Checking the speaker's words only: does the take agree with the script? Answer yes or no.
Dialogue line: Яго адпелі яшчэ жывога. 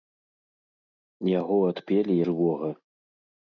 no